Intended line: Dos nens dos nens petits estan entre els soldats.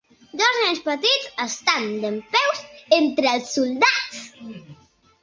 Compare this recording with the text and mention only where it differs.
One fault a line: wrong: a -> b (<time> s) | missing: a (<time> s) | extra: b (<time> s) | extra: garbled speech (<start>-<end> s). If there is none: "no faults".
missing: dos nens (0.8 s)
extra: dempeus (2.0 s)